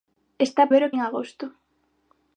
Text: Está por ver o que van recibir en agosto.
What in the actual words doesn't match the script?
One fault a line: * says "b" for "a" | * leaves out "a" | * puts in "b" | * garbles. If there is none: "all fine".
* leaves out "por"
* leaves out "que van recibir"